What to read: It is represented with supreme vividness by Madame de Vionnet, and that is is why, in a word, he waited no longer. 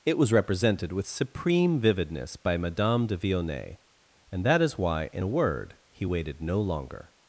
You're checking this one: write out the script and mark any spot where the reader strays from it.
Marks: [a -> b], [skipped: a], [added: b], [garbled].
It [is -> was] represented with supreme vividness by Madame de Vionnet, and that is [skipped: is] why, in a word, he waited no longer.